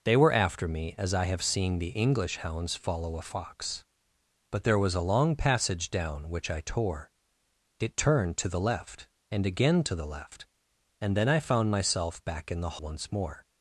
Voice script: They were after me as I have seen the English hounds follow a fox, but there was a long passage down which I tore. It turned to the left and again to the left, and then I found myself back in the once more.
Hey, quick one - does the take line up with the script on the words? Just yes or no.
yes